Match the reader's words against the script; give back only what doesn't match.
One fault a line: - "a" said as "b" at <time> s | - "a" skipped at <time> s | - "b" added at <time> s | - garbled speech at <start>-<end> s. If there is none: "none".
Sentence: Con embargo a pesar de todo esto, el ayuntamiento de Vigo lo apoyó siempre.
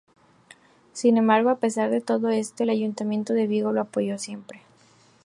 - "Con" said as "Sin" at 0.9 s